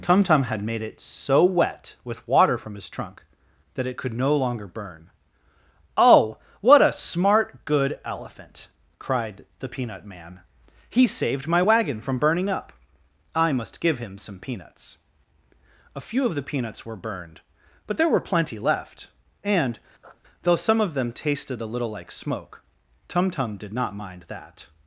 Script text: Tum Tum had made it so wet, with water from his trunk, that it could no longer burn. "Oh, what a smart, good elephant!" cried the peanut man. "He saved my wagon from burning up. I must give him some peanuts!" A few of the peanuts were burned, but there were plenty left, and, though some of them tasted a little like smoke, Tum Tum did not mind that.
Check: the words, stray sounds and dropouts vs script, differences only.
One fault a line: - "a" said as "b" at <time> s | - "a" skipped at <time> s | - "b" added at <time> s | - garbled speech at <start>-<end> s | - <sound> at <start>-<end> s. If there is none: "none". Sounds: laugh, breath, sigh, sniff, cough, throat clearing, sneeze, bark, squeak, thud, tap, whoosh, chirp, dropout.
- sniff at 20.0-20.2 s